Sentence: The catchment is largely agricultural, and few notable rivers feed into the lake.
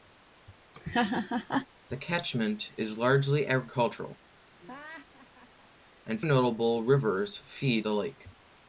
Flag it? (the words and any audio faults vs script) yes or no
yes